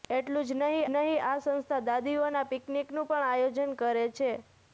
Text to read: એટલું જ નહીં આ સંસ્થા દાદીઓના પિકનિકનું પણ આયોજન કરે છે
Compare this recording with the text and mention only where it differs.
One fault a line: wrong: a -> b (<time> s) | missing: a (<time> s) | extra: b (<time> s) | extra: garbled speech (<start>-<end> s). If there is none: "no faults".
extra: નહીં (0.9 s)